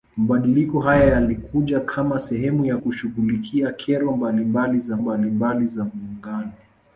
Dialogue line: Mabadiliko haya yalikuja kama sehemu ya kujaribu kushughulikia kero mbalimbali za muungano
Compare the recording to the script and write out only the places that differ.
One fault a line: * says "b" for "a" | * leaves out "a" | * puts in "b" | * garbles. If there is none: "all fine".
* leaves out "kujaribu"
* puts in "mbalimbali za"